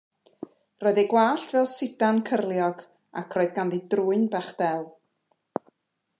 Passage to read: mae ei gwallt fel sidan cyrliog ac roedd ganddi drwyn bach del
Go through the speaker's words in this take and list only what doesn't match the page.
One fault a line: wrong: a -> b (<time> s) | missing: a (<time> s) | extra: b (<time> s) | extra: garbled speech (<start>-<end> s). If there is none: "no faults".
wrong: mae -> roedd (0.8 s)